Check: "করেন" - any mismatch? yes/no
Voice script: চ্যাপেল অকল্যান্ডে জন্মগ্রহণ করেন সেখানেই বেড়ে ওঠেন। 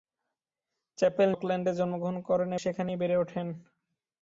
no